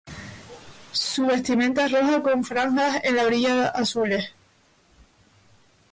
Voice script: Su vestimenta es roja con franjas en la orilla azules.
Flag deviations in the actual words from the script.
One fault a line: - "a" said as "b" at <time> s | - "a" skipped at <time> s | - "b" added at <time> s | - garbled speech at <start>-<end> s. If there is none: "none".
none